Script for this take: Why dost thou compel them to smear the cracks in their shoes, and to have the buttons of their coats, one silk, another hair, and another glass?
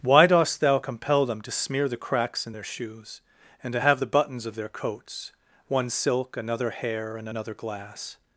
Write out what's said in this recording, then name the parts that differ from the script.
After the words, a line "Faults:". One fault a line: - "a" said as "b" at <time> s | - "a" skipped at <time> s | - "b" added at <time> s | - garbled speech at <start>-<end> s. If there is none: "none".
Why dost thou compel them to smear the cracks in their shoes, and to have the buttons of their coats, one silk, another hair, and another glass?
Faults:
none